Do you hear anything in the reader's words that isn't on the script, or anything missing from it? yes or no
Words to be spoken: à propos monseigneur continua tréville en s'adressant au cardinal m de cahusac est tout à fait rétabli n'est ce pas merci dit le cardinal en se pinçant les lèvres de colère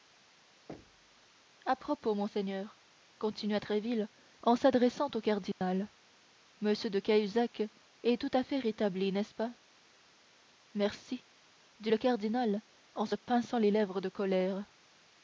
no